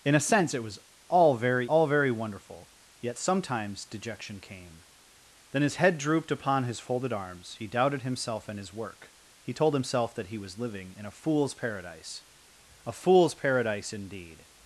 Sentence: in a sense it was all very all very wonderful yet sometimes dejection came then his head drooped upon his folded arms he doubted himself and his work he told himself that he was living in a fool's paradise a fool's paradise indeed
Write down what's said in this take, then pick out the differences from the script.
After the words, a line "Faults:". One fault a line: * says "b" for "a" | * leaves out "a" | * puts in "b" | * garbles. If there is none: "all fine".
in a sense it was all very all very wonderful yet sometimes dejection came then his head drooped upon his folded arms he doubted himself and his work he told himself that he was living in a fool's paradise a fool's paradise indeed
Faults:
all fine